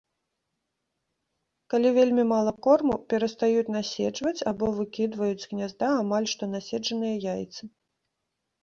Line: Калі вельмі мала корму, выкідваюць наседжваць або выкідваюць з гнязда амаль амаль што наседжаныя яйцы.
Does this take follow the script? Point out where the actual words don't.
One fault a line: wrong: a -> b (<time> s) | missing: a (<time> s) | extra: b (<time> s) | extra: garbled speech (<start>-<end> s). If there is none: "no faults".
wrong: выкідваюць -> перастаюць (3.1 s)
missing: амаль (6.3 s)